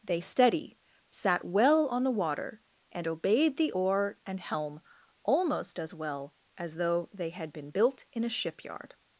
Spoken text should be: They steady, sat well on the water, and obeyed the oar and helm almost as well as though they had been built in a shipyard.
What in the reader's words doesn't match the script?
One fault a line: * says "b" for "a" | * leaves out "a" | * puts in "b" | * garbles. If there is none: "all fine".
all fine